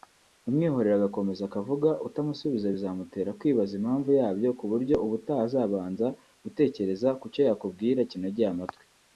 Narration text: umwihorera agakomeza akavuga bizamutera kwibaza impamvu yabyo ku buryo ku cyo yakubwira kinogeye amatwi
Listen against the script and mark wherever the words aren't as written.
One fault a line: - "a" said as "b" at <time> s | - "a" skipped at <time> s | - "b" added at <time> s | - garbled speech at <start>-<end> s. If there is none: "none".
- "utamusubiza" added at 2.1 s
- "ubutaha azabanza gutekereza" added at 5.0 s